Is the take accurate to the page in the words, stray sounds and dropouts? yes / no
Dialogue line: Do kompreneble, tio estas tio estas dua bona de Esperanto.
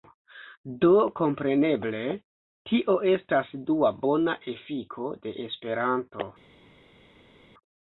no